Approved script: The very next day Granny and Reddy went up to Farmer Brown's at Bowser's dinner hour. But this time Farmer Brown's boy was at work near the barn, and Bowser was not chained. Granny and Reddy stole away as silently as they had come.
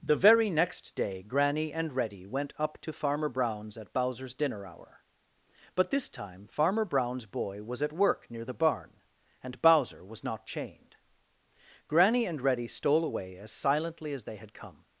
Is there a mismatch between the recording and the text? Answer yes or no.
no